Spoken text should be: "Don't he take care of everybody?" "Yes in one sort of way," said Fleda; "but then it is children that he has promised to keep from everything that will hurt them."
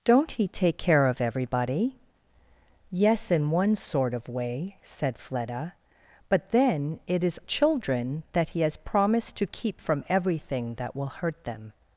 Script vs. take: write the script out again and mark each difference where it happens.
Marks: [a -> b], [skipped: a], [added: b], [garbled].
"Don't he take care of everybody?" "Yes in one sort of way," said Fleda; "but then it is children that he has promised to keep from everything that will hurt them."